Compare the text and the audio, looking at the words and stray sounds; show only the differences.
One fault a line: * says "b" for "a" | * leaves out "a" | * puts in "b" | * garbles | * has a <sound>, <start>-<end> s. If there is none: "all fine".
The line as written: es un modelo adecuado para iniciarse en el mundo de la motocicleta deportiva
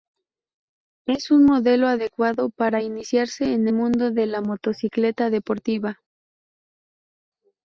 * leaves out "el"